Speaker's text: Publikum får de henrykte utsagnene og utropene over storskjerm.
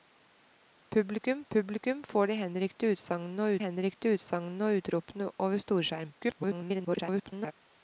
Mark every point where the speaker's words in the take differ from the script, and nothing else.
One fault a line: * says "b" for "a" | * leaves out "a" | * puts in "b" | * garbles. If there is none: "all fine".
* puts in "publikum"
* puts in "henrykte utsagnene og"
* garbles